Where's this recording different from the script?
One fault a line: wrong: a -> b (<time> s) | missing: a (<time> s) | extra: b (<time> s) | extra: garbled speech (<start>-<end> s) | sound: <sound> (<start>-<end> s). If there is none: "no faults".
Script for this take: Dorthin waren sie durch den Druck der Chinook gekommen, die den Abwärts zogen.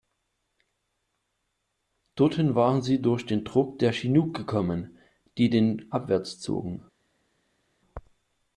no faults